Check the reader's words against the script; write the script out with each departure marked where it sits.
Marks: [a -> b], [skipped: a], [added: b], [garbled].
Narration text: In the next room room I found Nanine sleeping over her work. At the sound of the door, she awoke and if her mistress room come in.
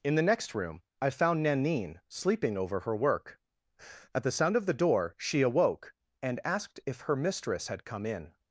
In the next room [skipped: room] I found Nanine sleeping over her work. At the sound of the door, she awoke and [added: asked] if her mistress [room -> had] come in.